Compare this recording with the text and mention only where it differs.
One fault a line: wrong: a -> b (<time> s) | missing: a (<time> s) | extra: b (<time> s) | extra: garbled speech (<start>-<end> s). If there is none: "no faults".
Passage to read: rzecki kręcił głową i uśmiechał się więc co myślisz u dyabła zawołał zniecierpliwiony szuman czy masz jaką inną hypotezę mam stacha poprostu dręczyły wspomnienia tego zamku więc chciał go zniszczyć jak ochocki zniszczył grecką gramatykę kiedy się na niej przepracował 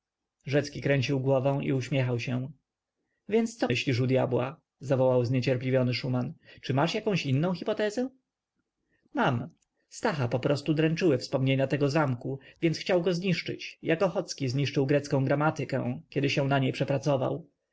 no faults